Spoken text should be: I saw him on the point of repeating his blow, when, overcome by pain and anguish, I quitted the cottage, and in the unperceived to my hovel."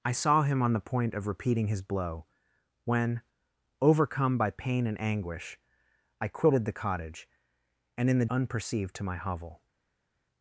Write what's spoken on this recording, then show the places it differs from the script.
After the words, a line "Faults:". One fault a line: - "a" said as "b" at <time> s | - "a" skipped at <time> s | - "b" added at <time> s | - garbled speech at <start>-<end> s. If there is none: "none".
I saw him on the point of repeating his blow, when, overcome by pain and anguish, I quitted the cottage, and in the unperceived to my hovel."
Faults:
none